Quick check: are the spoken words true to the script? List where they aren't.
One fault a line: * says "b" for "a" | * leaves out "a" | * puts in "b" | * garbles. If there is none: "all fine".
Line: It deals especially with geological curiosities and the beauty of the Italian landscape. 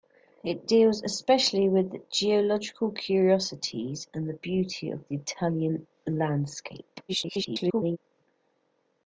* garbles